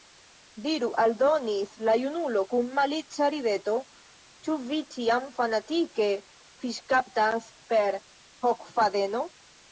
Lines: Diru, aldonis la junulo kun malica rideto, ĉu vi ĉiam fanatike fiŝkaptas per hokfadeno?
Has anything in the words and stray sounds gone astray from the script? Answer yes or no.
no